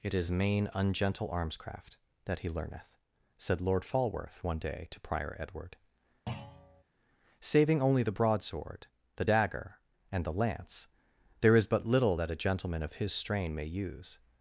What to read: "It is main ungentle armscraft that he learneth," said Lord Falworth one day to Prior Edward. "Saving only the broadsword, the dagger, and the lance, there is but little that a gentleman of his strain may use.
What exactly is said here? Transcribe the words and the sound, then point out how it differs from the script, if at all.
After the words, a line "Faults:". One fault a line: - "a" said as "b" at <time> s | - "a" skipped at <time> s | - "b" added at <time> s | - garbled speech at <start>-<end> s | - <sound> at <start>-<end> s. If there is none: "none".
"It is main ungentle armscraft that he learneth," said Lord Falworth one day to Prior Edward. "Saving only the broadsword, the dagger, and the lance, there is but little that a gentleman of his strain may use.
Faults:
- thud at 6.3-6.8 s